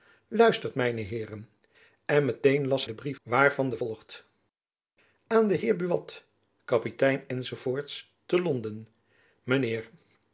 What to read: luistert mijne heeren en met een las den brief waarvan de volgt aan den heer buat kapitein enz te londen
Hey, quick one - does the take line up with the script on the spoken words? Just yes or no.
yes